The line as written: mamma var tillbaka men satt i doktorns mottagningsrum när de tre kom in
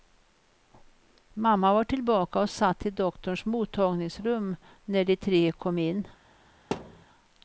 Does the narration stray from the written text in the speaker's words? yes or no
yes